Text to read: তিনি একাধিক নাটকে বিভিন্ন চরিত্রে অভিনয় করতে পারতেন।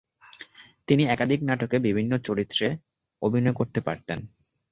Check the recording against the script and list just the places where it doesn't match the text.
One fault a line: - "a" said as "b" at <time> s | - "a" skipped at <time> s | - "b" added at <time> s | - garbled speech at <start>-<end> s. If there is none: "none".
none